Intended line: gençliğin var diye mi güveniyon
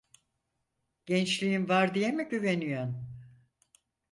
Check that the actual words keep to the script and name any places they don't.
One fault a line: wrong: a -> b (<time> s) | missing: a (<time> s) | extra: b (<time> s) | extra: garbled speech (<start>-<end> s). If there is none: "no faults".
no faults